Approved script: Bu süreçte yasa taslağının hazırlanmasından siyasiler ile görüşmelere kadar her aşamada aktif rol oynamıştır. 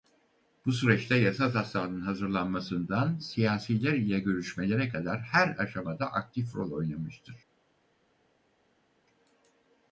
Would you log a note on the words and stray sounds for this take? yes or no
no